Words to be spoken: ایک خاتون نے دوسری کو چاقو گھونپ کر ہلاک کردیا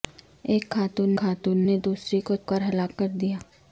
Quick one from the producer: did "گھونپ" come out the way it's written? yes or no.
no